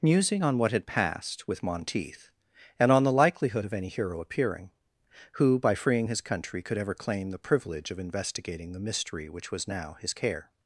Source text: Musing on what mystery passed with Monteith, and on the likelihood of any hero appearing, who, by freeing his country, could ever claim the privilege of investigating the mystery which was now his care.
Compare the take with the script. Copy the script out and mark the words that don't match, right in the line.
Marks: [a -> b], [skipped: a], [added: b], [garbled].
Musing on what [mystery -> had] passed with Monteith, and on the likelihood of any hero appearing, who, by freeing his country, could ever claim the privilege of investigating the mystery which was now his care.